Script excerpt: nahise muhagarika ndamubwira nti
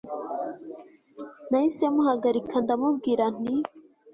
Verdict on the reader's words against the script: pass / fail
pass